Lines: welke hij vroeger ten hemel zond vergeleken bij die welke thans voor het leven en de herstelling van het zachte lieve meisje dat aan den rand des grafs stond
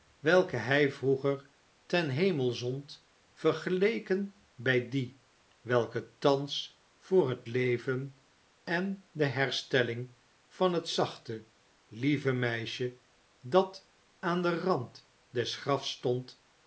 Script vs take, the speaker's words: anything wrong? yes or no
no